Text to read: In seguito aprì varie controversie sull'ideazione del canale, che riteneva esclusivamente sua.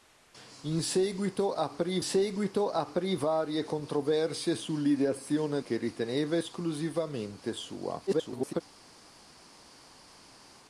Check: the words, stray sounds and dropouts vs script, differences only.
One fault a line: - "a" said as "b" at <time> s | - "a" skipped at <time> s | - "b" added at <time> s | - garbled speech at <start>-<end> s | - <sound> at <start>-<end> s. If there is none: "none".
- "seguito aprì" added at 2.0 s
- "del canale" skipped at 5.6 s
- garbled speech at 8.1-8.6 s